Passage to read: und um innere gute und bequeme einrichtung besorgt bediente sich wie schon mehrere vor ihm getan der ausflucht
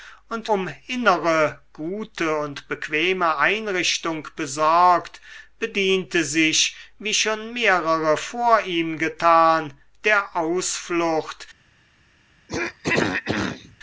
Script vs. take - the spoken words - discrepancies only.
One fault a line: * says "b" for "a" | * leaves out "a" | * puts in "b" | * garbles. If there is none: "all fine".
all fine